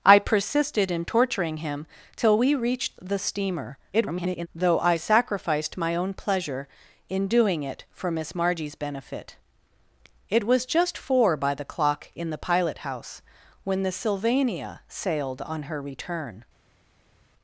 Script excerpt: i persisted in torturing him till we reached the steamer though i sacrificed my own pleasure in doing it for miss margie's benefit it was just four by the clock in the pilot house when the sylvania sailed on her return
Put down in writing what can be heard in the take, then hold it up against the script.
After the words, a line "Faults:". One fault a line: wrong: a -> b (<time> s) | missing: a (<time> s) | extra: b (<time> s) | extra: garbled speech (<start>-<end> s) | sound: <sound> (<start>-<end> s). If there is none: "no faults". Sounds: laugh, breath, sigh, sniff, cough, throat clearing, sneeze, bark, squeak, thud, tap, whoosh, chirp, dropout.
i persisted in torturing him till we reached the steamer [garbled] though i sacrificed my own pleasure in doing it for miss margie's benefit it was just four by the clock in the pilot house when the sylvania sailed on her return
Faults:
extra: garbled speech (3.9-4.5 s)